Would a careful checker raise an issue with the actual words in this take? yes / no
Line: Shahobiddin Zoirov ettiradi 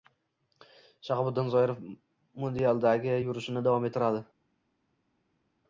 yes